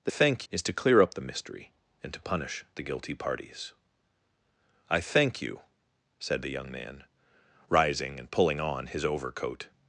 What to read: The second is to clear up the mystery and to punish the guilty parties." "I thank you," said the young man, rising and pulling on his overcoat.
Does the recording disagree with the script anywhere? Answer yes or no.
yes